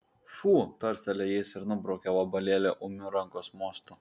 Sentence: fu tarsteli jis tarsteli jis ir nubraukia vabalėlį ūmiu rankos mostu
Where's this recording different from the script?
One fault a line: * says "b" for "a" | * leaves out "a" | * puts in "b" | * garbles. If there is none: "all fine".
* leaves out "tarsteli jis"